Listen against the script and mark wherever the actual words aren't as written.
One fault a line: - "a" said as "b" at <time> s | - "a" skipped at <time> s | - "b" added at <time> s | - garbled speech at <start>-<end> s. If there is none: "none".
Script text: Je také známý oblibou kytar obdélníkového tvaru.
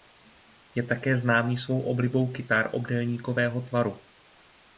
- "svou" added at 1.6 s